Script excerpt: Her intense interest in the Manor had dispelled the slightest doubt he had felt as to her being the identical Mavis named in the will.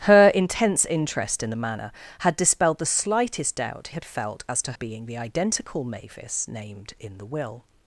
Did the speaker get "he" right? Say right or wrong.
wrong